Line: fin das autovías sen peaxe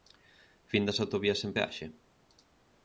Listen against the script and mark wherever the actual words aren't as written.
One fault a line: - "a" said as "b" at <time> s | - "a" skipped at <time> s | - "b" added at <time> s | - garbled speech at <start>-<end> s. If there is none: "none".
none